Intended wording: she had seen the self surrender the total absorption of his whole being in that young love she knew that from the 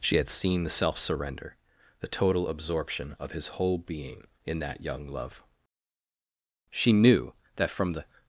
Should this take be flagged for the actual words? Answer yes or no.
no